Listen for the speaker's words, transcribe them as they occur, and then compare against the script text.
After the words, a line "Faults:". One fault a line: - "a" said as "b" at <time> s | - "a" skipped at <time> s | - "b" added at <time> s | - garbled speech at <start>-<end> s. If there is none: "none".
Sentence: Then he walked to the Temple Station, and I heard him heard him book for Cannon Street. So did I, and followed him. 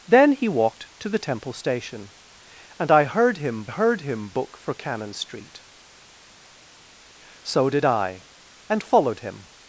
Then he walked to the Temple Station, and I heard him heard him book for Cannon Street. So did I, and followed him.
Faults:
none